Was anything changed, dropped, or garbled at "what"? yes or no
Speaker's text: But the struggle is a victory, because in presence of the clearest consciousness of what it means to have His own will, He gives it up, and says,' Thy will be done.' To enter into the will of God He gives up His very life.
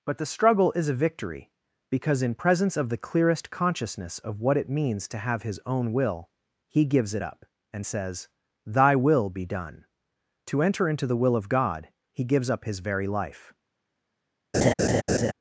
no